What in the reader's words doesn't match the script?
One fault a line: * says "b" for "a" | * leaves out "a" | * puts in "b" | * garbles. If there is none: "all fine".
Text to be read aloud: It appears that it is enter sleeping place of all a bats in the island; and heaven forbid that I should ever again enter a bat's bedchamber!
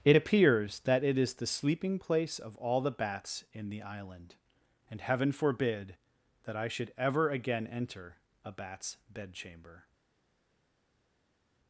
* says "the" for "enter"
* says "the" for "a"